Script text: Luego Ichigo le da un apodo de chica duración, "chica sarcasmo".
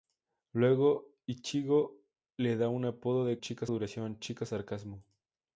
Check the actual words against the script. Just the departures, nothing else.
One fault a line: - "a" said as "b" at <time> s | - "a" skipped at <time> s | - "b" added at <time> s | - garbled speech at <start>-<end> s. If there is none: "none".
none